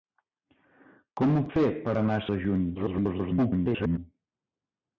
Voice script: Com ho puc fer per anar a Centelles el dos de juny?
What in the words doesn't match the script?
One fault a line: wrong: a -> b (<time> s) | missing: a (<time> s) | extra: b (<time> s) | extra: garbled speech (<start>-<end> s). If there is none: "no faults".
missing: puc (1.4 s)
missing: Centelles el dos (2.3 s)
extra: garbled speech (2.7-4.0 s)